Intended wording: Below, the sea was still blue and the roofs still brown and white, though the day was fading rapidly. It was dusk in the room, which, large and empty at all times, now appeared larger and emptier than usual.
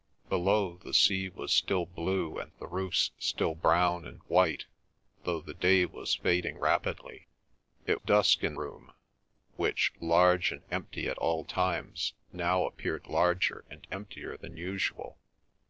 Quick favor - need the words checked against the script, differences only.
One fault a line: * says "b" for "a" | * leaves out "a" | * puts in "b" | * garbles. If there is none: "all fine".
* leaves out "was"
* leaves out "the"